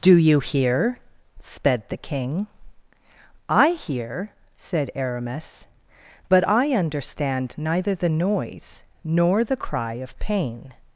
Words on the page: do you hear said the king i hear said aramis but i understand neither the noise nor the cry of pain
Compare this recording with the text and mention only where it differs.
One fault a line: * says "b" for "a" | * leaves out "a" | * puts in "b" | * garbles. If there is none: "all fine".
* says "sped" for "said"